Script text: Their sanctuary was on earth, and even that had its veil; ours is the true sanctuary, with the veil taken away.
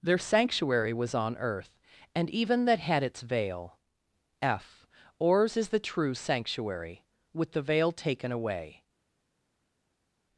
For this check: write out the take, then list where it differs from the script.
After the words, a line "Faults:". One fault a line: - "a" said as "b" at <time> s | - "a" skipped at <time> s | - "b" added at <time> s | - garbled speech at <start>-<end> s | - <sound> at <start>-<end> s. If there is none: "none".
Their sanctuary was on earth, and even that had its veil; f ours is the true sanctuary, with the veil taken away.
Faults:
- "f" added at 4.4 s